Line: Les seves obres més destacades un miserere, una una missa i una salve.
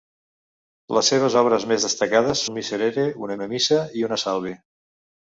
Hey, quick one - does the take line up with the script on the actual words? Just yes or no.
yes